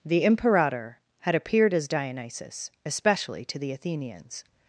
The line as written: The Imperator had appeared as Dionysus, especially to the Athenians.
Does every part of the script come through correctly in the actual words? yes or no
yes